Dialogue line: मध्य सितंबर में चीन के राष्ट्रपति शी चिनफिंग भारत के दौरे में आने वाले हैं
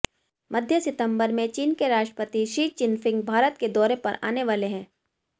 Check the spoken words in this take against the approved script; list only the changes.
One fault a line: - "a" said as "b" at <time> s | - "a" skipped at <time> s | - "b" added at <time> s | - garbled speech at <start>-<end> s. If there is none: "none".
- "में" said as "पर" at 4.0 s